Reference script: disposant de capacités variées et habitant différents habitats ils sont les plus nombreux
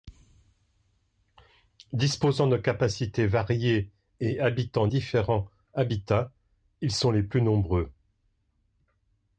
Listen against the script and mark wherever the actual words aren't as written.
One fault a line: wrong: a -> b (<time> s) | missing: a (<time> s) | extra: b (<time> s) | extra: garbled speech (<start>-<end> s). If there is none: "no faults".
no faults